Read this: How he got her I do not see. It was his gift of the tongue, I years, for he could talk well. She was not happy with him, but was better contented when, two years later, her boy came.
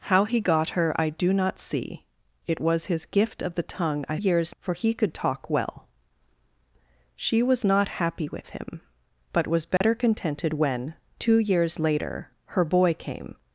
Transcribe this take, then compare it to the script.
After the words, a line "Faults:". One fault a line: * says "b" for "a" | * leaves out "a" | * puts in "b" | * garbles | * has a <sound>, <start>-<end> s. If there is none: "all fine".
How he got her I do not see. It was his gift of the tongue, I years, for he could talk well. She was not happy with him, but was better contented when, two years later, her boy came.
Faults:
* has a dropout, 9.8-9.8 s